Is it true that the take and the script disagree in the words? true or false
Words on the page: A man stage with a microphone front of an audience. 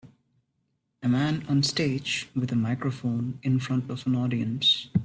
true